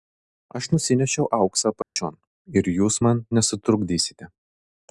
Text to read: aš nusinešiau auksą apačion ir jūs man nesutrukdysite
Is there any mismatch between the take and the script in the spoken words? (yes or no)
no